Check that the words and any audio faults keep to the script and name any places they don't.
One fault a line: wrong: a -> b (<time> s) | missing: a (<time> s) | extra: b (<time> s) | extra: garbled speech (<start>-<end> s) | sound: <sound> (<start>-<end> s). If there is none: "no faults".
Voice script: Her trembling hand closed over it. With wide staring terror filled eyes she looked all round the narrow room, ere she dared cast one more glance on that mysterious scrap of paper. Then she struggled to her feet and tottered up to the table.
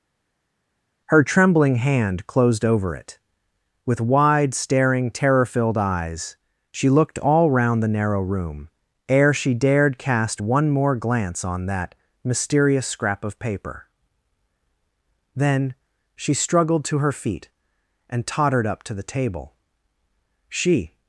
extra: She (20.5 s)